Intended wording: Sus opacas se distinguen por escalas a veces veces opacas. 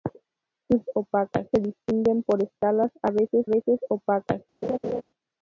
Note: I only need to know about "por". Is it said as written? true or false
true